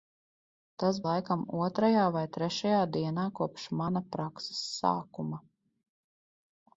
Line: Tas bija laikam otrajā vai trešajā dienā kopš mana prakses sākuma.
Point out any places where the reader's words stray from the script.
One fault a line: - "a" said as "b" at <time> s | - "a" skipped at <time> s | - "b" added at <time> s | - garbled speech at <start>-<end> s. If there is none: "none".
- "bija" skipped at 1.0 s